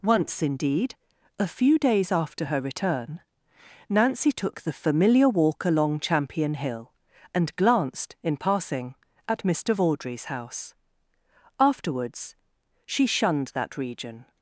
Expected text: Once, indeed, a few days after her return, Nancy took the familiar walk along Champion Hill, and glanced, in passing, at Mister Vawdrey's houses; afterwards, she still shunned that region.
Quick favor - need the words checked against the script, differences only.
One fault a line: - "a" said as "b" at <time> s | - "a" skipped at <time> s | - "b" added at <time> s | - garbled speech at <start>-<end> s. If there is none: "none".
- "houses" said as "house" at 10.3 s
- "still" skipped at 13.1 s